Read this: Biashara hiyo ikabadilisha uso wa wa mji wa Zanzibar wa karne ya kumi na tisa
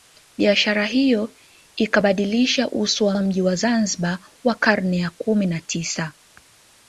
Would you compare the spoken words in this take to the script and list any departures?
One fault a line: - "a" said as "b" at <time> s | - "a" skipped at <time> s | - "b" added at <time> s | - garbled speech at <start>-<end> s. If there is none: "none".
none